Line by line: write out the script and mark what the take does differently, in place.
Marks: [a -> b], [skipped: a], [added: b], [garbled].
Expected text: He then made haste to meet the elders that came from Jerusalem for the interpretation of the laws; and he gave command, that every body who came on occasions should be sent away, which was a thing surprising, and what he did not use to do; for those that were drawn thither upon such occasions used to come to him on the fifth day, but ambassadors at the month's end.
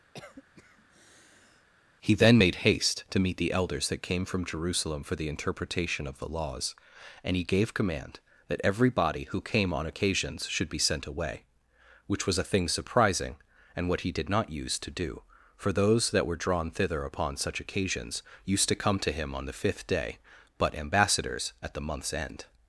He then made haste to meet the elders that came from Jerusalem for the interpretation of the laws; and he gave command, that every body who came on occasions should be sent away, which was a thing surprising, and what he did not use to do; for those that were drawn thither upon such occasions used to come to him on the fifth day, but ambassadors at the month's end.